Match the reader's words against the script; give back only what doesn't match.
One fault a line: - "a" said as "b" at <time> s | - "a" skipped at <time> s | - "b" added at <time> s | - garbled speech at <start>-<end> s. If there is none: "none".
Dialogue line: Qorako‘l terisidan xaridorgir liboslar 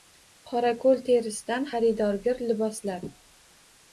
none